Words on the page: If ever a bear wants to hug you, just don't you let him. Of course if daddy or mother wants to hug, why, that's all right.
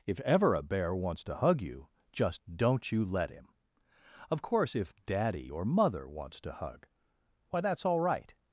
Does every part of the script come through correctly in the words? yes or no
yes